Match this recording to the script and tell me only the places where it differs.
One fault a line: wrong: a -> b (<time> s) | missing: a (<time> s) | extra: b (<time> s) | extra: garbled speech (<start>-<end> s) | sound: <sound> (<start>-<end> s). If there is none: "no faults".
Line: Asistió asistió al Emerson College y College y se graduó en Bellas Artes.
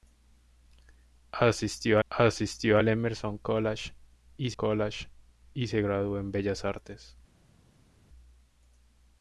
no faults